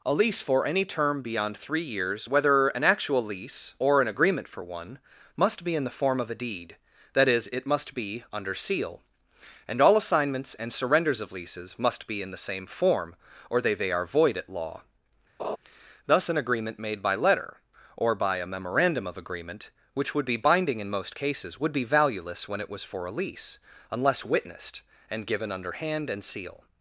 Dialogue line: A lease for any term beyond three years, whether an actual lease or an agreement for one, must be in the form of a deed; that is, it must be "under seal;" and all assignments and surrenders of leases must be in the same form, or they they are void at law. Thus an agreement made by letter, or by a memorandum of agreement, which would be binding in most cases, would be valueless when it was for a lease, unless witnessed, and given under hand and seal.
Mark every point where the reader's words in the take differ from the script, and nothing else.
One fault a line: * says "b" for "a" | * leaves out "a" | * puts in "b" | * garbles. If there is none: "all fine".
all fine